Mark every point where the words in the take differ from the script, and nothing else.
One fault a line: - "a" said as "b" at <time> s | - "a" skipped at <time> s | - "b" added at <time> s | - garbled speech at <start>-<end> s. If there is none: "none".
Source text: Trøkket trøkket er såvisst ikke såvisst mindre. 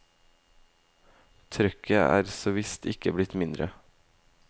- "trøkket" skipped at 2.0 s
- "såvisst" said as "blitt" at 3.2 s